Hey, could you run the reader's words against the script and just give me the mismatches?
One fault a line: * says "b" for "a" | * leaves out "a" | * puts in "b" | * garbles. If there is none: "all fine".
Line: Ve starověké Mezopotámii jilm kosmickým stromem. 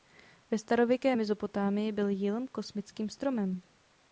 * puts in "byl"